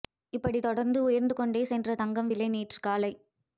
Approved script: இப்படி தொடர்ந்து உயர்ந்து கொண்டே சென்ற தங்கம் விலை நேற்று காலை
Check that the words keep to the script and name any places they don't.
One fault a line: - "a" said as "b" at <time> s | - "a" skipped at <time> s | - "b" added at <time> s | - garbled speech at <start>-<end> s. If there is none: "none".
none